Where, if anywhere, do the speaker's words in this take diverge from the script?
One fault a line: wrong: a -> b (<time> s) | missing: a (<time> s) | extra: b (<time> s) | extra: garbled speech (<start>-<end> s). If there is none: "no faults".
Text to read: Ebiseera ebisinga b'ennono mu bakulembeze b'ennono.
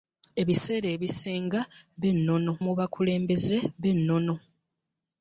no faults